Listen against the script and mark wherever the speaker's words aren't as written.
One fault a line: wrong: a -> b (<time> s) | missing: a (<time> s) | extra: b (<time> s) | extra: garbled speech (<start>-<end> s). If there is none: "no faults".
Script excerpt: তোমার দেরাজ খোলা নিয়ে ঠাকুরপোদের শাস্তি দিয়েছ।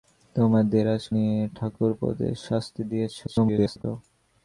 missing: খোলা (1.0 s)
extra: garbled speech (3.3-3.8 s)